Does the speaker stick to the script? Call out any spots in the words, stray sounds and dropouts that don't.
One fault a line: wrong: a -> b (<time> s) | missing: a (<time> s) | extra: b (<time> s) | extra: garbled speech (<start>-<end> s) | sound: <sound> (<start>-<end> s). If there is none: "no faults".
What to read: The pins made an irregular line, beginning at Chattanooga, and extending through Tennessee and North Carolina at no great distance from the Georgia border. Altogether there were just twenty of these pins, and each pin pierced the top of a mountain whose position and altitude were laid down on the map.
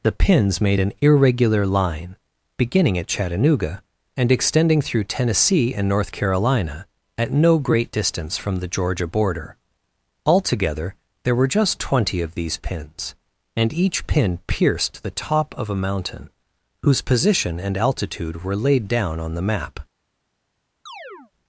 sound: chirp (20.9-21.3 s)